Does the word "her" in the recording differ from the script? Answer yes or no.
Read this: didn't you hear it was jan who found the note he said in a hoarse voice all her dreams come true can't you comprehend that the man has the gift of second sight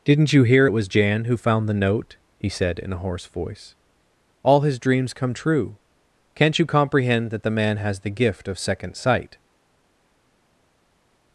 yes